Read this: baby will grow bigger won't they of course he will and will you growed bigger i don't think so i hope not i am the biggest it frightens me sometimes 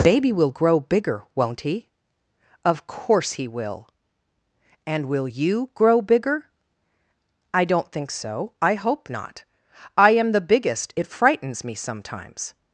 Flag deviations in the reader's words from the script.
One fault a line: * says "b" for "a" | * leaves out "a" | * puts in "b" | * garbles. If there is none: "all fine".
* says "he" for "they"
* says "grow" for "growed"